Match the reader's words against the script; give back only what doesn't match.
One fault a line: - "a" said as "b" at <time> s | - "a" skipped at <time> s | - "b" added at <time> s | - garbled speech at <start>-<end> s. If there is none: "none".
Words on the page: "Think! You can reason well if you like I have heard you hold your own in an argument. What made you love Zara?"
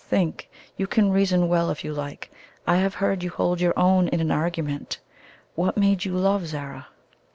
none